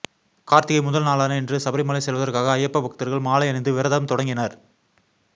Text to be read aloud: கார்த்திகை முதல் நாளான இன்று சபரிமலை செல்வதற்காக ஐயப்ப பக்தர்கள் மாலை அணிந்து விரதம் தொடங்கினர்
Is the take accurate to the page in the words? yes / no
yes